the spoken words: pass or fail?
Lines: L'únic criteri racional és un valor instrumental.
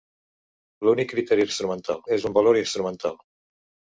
fail